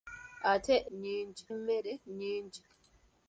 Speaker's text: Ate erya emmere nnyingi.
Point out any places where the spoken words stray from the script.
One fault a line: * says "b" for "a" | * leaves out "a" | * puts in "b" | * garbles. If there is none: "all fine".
* says "nnyingi" for "erya"